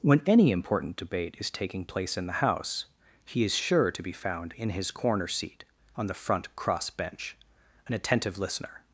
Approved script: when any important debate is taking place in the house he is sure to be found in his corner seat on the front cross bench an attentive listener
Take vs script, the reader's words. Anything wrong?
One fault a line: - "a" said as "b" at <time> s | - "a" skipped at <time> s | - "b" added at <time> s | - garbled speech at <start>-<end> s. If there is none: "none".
none